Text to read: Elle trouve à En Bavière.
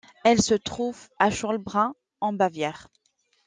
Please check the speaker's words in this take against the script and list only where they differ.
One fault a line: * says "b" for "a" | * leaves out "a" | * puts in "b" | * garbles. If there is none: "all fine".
* puts in "se"
* puts in "Schollbrunn"